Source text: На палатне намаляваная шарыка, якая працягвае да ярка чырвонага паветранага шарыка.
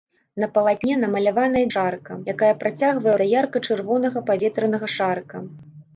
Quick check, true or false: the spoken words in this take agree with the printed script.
true